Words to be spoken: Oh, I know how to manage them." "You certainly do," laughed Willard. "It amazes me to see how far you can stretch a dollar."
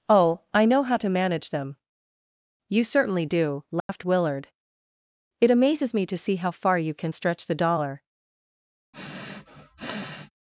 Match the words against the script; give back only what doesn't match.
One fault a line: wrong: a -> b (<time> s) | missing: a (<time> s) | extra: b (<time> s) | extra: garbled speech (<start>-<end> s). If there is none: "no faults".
wrong: a -> the (7.5 s)